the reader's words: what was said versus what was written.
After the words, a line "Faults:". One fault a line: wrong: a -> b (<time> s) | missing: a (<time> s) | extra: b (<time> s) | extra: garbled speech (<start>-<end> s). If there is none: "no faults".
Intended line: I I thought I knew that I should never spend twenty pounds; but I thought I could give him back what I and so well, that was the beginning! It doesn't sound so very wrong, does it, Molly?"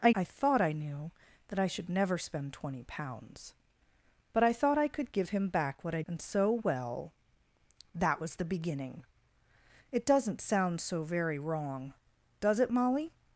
I I thought I knew that I should never spend twenty pounds; but I thought I could give him back what I and so well, that was the beginning! It doesn't sound so very wrong, does it, Molly?"
Faults:
no faults